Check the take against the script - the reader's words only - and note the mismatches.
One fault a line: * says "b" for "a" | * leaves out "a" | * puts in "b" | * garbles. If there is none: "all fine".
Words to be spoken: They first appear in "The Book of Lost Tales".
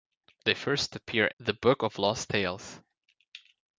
* leaves out "in"